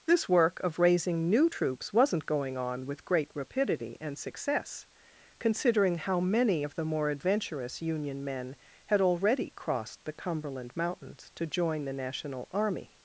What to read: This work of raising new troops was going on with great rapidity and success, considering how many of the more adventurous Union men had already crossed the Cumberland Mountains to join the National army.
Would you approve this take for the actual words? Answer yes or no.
no